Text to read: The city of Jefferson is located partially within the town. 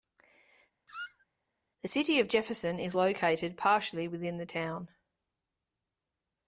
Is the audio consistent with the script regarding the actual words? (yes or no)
yes